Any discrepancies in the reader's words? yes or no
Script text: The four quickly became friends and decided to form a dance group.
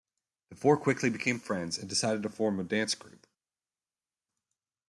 no